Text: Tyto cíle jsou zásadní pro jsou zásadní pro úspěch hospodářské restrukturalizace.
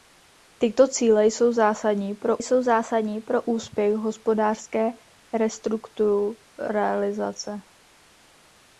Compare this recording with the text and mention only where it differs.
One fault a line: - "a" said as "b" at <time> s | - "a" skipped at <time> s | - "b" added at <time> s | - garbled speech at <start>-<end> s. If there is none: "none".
none